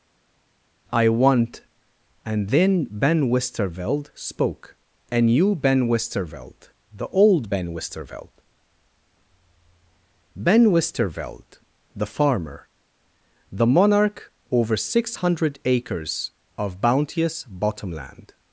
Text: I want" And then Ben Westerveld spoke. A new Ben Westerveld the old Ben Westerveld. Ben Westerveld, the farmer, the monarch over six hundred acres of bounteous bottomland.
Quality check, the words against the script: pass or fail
pass